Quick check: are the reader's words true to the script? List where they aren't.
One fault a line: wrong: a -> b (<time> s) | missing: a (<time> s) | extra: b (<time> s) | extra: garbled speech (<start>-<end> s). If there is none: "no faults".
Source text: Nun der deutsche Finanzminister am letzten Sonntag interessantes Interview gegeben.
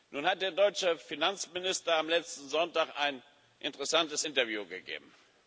extra: hat (0.2 s)
extra: ein (3.0 s)